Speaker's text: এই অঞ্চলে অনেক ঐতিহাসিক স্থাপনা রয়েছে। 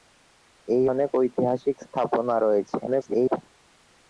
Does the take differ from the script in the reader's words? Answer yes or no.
yes